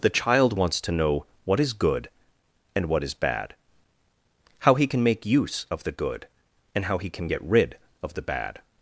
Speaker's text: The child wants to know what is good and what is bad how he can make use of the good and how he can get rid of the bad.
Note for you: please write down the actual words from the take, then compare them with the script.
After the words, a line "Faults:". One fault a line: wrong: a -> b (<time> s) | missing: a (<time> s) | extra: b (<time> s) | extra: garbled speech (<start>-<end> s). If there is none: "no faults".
The child wants to know what is good and what is bad how he can make use of the good and how he can get rid of the bad.
Faults:
no faults